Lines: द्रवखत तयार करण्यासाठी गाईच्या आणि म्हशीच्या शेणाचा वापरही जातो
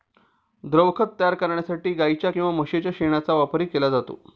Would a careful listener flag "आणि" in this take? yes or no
yes